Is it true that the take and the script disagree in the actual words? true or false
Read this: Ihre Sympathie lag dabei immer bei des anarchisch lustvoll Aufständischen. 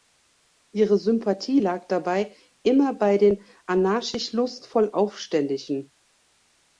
true